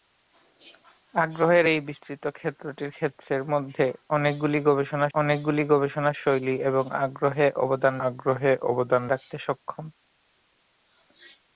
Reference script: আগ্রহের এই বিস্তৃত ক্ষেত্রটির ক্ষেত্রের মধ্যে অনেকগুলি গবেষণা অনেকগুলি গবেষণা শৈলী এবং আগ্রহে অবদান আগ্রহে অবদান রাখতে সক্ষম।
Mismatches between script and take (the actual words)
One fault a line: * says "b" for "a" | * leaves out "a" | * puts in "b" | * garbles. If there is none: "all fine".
all fine